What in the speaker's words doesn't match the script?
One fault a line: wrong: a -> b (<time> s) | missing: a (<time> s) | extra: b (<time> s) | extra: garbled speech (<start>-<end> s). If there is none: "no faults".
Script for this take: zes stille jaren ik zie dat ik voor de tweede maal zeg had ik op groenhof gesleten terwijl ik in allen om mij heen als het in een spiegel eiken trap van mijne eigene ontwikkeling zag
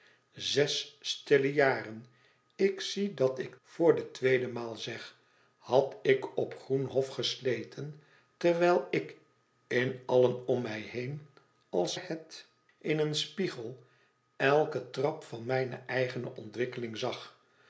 no faults